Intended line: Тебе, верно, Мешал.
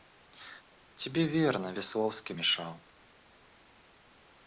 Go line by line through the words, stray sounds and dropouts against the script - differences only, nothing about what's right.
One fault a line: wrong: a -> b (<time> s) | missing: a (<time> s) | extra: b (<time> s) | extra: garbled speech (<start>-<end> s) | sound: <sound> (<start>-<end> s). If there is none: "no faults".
extra: Весловский (1.7 s)